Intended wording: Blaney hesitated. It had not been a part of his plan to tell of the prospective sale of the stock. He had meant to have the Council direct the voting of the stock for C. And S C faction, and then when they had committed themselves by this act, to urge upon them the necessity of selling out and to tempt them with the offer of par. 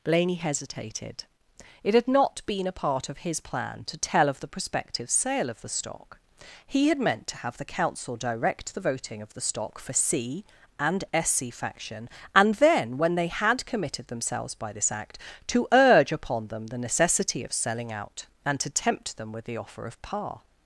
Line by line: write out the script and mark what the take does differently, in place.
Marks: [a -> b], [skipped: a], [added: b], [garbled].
Blaney hesitated. It had not been a part of his plan to tell of the prospective sale of the stock. He had meant to have the Council direct the voting of the stock for C. And S C faction, and then when they had committed themselves by this act, to urge upon them the necessity of selling out and to tempt them with the offer of par.